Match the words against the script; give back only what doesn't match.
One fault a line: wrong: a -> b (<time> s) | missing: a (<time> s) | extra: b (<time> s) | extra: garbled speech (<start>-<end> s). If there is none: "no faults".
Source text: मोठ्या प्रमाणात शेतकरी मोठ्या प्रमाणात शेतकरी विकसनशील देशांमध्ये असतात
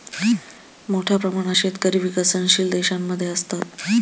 missing: मोठ्या प्रमाणात शेतकरी (2.0 s)